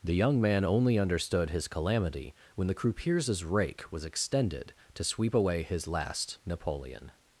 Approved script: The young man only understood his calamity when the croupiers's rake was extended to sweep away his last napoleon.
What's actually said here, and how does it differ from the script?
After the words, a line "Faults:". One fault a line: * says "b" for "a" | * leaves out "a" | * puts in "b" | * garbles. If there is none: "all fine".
The young man only understood his calamity when the croupiers's rake was extended to sweep away his last napoleon.
Faults:
all fine